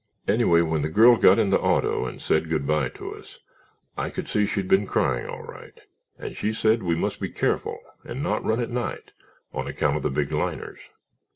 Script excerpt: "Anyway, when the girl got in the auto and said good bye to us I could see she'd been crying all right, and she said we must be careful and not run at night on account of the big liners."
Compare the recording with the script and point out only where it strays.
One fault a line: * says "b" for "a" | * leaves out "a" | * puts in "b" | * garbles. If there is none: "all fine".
all fine